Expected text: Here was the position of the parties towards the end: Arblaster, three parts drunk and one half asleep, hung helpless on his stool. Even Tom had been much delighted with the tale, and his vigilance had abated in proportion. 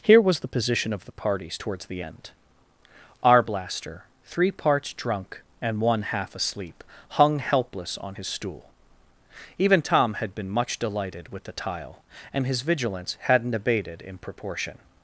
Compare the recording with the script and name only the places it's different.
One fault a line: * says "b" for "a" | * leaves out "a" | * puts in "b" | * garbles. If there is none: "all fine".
* says "tile" for "tale"
* says "hadn't" for "had"